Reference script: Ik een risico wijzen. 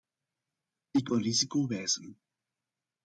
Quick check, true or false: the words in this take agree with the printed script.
true